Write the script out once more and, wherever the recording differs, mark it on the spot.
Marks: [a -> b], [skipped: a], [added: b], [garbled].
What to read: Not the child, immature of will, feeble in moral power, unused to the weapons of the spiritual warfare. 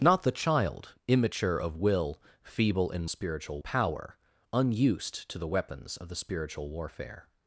Not the child, immature of will, feeble in [moral -> spiritual] power, unused to the weapons of the spiritual warfare.